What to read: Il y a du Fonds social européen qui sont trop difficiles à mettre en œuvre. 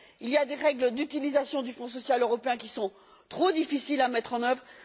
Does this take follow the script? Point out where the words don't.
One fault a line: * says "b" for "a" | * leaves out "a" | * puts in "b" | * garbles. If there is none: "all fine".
* puts in "des règles d'utilisation"